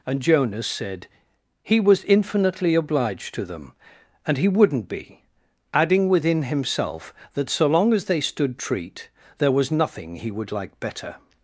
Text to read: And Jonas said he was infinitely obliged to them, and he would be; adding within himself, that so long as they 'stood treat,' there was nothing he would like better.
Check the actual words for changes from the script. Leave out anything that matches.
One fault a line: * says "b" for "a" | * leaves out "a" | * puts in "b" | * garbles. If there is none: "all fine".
* says "wouldn't" for "would"